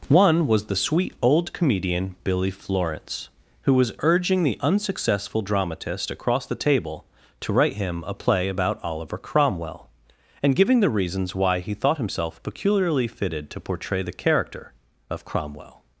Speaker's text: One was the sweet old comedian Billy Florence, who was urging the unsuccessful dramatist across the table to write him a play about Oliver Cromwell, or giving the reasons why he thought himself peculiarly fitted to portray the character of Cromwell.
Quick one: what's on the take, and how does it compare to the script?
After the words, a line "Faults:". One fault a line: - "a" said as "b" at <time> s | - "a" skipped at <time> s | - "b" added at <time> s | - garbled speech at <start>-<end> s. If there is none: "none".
One was the sweet old comedian Billy Florence, who was urging the unsuccessful dramatist across the table to write him a play about Oliver Cromwell, and giving the reasons why he thought himself peculiarly fitted to portray the character of Cromwell.
Faults:
- "or" said as "and" at 10.4 s